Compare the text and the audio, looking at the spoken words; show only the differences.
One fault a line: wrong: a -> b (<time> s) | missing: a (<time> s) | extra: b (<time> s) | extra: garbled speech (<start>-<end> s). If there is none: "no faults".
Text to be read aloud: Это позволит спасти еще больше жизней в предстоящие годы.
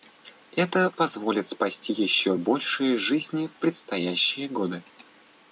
no faults